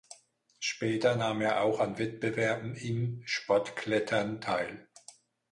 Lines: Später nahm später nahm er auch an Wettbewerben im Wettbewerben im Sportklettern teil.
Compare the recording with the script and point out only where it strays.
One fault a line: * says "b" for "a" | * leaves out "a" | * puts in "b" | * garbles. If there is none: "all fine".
* leaves out "später nahm"
* leaves out "Wettbewerben im"